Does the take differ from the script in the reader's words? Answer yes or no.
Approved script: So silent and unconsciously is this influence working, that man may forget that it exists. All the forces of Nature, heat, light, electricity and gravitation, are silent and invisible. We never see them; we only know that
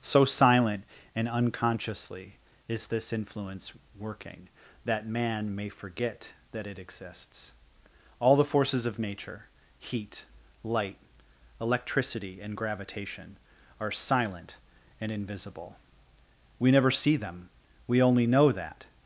no